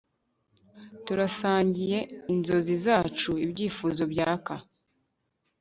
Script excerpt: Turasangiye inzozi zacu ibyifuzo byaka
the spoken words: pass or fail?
pass